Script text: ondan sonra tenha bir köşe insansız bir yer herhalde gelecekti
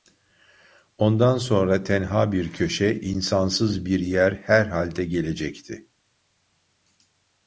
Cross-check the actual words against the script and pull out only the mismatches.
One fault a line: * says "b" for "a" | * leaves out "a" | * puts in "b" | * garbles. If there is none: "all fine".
all fine